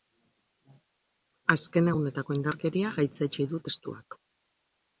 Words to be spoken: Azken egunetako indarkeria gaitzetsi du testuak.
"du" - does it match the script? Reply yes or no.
yes